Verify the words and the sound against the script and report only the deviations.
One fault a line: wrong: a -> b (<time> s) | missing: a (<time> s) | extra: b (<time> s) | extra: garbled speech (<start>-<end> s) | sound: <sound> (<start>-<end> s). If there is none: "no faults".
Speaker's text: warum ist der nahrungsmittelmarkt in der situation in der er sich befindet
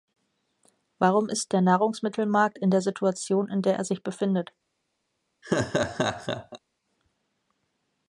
sound: laugh (5.4-6.6 s)